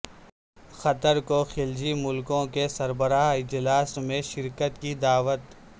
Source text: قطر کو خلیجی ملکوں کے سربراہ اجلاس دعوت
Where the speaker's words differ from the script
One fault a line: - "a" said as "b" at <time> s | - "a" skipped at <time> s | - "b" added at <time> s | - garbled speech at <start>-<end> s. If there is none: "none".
- "میں شرکت کی" added at 4.0 s